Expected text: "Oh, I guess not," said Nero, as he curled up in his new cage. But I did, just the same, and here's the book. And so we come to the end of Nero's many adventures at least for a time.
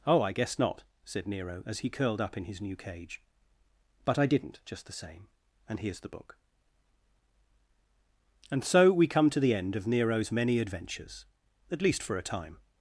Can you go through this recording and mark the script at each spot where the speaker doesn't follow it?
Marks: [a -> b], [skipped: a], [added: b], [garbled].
"Oh, I guess not," said Nero, as he curled up in his new cage. But I [did, -> didn't] just the same, and here's the book. And so we come to the end of Nero's many adventures at least for a time.